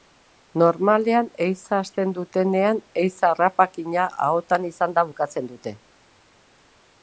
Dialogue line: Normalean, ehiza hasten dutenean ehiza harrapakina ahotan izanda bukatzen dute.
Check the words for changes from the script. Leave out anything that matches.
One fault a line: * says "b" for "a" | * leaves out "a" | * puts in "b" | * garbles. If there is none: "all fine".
all fine